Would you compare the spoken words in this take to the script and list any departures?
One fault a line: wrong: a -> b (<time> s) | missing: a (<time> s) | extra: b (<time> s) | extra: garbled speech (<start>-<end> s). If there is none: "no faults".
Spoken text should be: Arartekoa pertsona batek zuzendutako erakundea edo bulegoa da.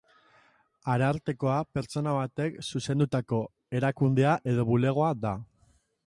no faults